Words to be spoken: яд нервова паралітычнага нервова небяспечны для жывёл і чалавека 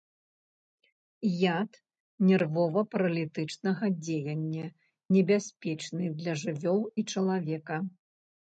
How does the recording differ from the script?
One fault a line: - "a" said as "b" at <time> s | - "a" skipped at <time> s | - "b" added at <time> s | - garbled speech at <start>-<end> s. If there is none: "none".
- "нервова" said as "дзеяння" at 4.0 s